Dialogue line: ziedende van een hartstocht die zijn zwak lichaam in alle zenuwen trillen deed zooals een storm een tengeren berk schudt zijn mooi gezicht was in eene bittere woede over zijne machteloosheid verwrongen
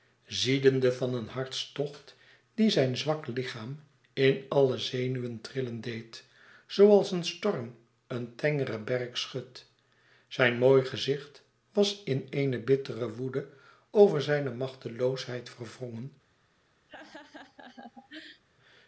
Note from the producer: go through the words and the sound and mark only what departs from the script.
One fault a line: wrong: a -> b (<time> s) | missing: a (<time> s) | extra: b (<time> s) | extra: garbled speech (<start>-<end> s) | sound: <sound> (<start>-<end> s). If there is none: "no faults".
sound: laugh (16.9-18.4 s)